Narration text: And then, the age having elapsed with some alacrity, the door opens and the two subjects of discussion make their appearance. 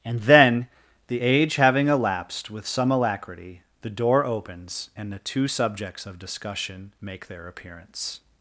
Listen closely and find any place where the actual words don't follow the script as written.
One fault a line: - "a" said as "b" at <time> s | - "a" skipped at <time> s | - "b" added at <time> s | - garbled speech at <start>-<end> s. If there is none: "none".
none